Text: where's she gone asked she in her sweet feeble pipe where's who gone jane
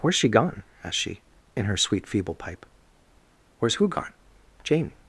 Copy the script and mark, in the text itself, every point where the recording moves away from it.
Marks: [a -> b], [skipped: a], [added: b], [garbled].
where's she gone asked she in her sweet feeble pipe where's who gone jane